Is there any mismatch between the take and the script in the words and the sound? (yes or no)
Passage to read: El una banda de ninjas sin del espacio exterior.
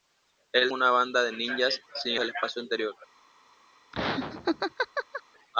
yes